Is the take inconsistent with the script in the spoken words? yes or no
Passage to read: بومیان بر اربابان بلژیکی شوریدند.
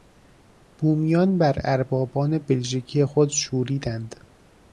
yes